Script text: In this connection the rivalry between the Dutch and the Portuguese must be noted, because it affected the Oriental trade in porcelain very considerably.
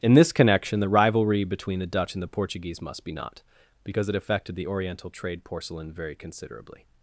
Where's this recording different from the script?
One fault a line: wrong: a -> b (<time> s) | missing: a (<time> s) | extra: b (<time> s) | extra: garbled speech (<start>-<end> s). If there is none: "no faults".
wrong: noted -> not (3.1 s)
missing: in (5.4 s)